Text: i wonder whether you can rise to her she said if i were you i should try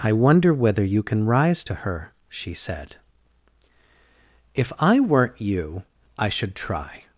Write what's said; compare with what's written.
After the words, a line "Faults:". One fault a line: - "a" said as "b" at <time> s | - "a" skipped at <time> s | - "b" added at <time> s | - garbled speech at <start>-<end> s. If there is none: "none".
i wonder whether you can rise to her she said if i weren't you i should try
Faults:
- "were" said as "weren't" at 5.0 s